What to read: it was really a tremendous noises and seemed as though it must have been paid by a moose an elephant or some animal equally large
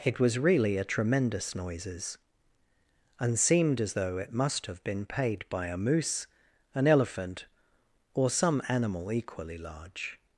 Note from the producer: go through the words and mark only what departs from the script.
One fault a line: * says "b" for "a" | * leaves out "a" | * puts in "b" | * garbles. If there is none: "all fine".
all fine